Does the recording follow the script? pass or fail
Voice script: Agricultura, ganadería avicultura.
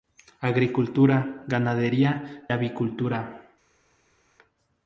pass